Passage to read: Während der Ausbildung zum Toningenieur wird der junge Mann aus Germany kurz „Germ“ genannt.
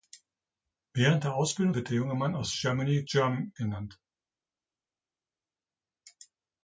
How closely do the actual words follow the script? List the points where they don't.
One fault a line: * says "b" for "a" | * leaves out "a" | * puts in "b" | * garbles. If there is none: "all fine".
* leaves out "zum Toningenieur"
* leaves out "kurz"